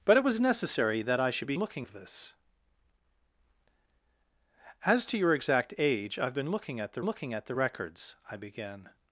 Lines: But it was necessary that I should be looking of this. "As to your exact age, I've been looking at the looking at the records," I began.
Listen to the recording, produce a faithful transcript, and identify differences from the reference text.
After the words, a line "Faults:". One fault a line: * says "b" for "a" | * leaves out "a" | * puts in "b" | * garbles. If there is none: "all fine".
But it was necessary that I should be looking of this. "As to your exact age, I've been looking at the looking at the records," I began.
Faults:
all fine